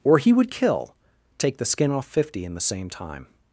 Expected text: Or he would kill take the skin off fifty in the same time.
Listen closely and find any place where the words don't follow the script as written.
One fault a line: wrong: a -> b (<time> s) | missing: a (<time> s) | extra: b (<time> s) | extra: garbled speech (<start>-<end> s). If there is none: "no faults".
no faults